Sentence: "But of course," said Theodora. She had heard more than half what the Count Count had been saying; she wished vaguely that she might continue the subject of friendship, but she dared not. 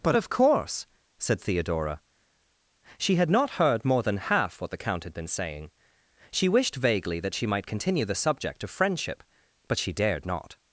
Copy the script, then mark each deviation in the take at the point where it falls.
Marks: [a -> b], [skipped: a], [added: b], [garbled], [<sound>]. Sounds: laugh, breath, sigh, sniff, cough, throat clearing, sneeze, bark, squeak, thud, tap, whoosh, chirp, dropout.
"But of course," said Theodora. She had [added: not] heard more than half what the Count [skipped: Count] had been saying; she wished vaguely that she might continue the subject of friendship, but she dared not.